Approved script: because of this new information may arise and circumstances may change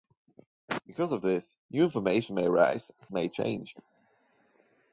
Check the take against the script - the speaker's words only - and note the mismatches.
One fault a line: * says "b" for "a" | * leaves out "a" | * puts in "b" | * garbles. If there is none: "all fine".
* leaves out "circumstances"